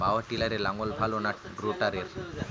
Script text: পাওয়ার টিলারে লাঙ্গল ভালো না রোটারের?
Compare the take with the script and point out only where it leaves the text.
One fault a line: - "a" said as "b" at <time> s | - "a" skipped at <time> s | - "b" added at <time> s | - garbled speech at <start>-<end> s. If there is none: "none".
none